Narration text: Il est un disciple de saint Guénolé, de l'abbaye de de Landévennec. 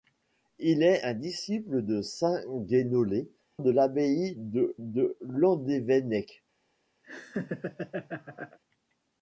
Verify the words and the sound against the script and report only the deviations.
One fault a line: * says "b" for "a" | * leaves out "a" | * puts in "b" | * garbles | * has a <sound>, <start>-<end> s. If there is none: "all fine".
* has a laugh, 7.0-8.6 s